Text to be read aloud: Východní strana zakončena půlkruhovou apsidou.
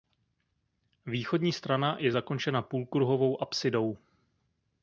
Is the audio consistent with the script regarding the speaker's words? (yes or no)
no